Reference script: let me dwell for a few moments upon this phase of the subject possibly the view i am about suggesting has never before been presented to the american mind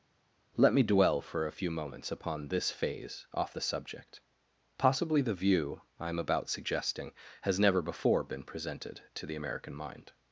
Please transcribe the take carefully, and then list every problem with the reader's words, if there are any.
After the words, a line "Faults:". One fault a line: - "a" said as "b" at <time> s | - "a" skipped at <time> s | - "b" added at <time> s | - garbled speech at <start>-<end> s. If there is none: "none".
let me dwell for a few moments upon this phase off the subject possibly the view i am about suggesting has never before been presented to the american mind
Faults:
- "of" said as "off" at 3.3 s